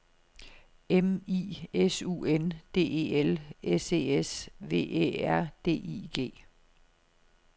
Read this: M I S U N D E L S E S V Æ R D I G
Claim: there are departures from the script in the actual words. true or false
false